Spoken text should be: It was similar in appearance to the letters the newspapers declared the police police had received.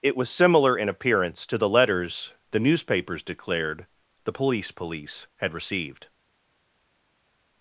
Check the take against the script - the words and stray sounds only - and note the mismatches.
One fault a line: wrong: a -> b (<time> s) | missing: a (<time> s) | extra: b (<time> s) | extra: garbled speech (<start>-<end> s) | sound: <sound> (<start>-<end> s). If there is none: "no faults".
no faults